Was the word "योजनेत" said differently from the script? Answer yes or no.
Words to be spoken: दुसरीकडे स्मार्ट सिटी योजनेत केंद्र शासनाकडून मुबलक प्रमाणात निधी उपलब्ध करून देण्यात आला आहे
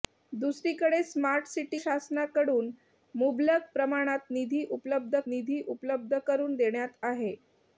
yes